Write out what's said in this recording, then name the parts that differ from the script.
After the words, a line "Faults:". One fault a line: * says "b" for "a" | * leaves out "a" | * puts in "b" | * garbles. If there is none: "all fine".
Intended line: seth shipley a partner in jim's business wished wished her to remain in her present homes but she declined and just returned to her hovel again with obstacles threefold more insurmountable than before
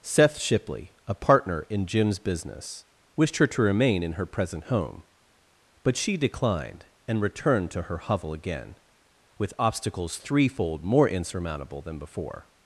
seth shipley a partner in jim's business wished her to remain in her present home but she declined and returned to her hovel again with obstacles threefold more insurmountable than before
Faults:
* leaves out "wished"
* says "home" for "homes"
* leaves out "just"